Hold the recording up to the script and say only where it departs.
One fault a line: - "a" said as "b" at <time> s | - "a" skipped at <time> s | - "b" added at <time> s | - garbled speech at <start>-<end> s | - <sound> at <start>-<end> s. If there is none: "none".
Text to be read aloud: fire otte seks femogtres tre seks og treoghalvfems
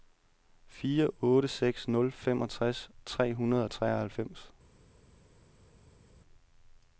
- "nul" added at 1.9 s
- "seks" said as "hundrede" at 3.4 s